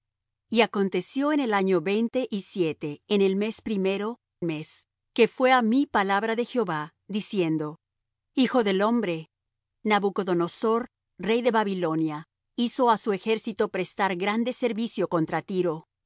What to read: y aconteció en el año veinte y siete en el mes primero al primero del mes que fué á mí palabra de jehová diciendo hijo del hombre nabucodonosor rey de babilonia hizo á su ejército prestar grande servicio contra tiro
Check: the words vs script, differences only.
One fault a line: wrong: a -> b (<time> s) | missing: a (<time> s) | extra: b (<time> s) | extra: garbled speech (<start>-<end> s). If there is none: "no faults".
missing: al primero del (4.2 s)